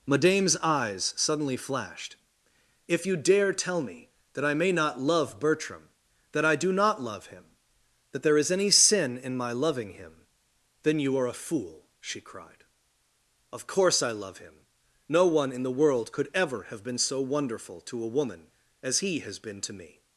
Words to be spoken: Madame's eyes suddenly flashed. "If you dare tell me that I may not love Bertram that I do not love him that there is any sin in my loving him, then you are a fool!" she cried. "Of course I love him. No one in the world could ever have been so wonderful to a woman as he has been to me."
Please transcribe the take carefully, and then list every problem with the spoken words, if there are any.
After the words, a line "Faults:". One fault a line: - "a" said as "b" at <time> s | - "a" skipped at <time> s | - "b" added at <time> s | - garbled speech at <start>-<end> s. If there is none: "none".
Madame's eyes suddenly flashed. "If you dare tell me that I may not love Bertram that I do not love him that there is any sin in my loving him, then you are a fool!" she cried. "Of course I love him. No one in the world could ever have been so wonderful to a woman as he has been to me."
Faults:
none